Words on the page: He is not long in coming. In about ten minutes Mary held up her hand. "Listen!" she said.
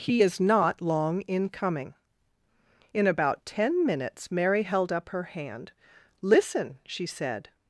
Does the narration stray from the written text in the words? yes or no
no